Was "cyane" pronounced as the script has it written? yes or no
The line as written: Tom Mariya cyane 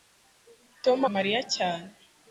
yes